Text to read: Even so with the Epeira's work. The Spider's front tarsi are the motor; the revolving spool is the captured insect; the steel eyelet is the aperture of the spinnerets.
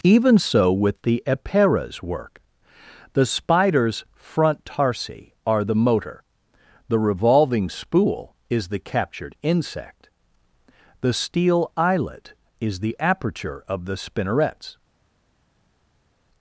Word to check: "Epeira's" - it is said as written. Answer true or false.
true